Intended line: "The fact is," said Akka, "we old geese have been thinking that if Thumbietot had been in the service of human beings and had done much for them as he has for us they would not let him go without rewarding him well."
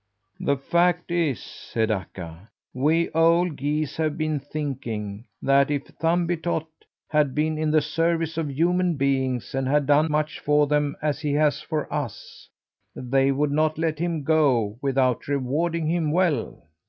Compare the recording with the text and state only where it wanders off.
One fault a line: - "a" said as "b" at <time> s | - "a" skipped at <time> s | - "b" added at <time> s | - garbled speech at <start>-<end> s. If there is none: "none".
none